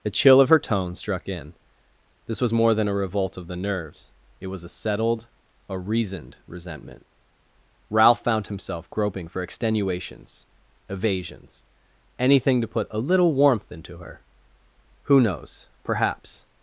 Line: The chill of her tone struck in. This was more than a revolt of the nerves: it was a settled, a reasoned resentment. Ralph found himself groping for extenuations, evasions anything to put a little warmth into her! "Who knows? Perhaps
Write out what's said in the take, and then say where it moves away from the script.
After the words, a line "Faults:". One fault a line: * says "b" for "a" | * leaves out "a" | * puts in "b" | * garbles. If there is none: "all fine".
The chill of her tone struck in. This was more than a revolt of the nerves: it was a settled, a reasoned resentment. Ralph found himself groping for extenuations, evasions anything to put a little warmth into her! "Who knows? Perhaps
Faults:
all fine